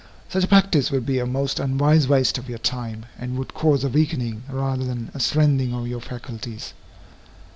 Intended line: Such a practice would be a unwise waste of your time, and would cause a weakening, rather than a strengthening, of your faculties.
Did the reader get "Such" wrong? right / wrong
right